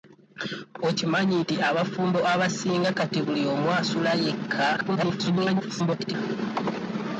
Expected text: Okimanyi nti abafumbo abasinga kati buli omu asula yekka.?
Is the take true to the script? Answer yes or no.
no